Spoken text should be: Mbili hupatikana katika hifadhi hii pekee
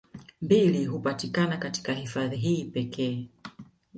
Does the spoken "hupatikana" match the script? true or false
true